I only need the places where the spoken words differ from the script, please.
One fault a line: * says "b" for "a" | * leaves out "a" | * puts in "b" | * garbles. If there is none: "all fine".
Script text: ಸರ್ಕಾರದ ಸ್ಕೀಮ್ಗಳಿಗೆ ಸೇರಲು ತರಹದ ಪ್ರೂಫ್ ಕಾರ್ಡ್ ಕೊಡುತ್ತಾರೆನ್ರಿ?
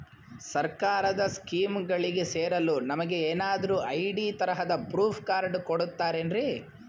* puts in "ನಮಗೆ ಏನಾದ್ರು ಐ.ಡಿ"